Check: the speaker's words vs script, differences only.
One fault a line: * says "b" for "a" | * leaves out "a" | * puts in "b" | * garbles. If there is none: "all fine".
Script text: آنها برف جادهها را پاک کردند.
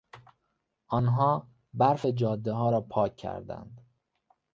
all fine